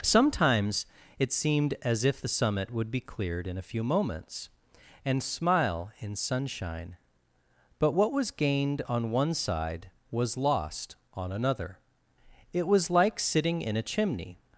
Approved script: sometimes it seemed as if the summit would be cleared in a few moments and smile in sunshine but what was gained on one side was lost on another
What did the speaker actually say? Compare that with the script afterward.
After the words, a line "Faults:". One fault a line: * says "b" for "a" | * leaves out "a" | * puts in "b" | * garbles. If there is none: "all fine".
sometimes it seemed as if the summit would be cleared in a few moments and smile in sunshine but what was gained on one side was lost on another it was like sitting in a chimney
Faults:
* puts in "it was like sitting in a chimney"